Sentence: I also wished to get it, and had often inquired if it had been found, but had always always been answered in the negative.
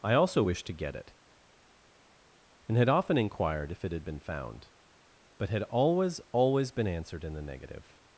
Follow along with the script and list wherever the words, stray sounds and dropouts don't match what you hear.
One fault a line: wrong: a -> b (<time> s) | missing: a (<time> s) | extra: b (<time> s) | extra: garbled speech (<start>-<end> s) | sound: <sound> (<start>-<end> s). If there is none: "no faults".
no faults